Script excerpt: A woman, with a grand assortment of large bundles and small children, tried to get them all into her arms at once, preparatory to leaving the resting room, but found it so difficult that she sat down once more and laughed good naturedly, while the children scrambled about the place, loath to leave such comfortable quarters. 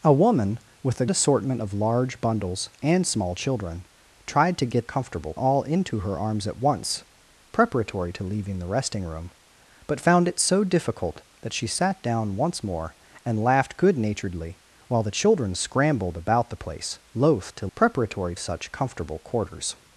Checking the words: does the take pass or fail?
fail